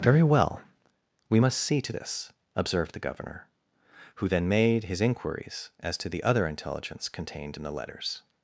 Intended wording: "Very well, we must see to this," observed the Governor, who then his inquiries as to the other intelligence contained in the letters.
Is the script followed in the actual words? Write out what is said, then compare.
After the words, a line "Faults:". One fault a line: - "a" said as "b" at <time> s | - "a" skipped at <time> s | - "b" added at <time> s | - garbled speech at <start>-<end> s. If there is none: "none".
"Very well, we must see to this," observed the Governor, who then made his inquiries as to the other intelligence contained in the letters.
Faults:
- "made" added at 4.5 s